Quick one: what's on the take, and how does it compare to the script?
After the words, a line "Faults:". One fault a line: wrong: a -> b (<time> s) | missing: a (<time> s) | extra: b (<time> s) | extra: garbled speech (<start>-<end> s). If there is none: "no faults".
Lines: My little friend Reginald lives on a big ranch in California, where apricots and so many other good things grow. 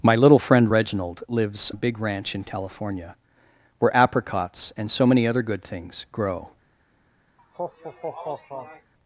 My little friend Reginald lives a big ranch in California, where apricots and so many other good things grow.
Faults:
missing: on (1.7 s)